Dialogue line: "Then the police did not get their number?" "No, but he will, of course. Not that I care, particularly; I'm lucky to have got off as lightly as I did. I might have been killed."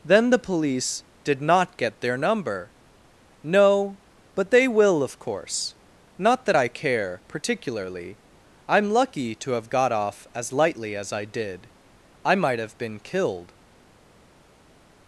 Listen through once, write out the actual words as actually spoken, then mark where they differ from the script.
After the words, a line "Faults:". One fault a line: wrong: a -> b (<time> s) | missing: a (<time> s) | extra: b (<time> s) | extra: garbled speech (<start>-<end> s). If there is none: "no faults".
"Then the police did not get their number?" "No, but they will, of course. Not that I care, particularly; I'm lucky to have got off as lightly as I did. I might have been killed."
Faults:
wrong: he -> they (4.5 s)